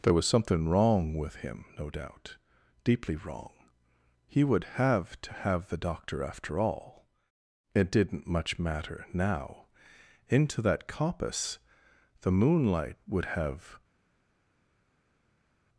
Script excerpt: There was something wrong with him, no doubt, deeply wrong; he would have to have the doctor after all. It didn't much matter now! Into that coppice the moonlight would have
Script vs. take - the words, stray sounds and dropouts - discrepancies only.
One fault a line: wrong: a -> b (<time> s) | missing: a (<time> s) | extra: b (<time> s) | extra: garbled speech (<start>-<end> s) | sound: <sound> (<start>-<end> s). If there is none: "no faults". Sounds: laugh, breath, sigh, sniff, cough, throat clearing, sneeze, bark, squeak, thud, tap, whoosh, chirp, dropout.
no faults